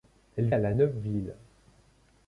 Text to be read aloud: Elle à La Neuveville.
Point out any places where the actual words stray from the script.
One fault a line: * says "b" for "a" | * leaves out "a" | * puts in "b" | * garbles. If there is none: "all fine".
all fine